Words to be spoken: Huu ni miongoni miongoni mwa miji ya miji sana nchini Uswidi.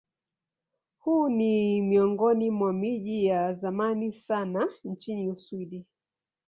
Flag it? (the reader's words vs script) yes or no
yes